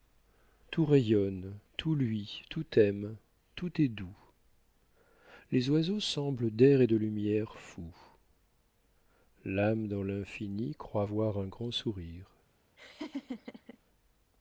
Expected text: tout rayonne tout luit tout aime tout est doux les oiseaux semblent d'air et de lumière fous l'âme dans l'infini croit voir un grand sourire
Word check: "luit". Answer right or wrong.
right